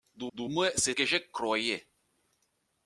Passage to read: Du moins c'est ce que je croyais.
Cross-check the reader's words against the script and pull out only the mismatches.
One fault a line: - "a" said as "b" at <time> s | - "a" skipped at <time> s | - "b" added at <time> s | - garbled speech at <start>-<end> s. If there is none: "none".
- "du" added at 0.3 s
- "ce" skipped at 0.9 s